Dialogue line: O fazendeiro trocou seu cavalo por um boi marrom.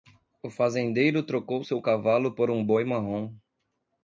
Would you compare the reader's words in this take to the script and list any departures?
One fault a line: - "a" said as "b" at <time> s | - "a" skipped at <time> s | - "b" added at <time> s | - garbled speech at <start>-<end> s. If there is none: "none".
none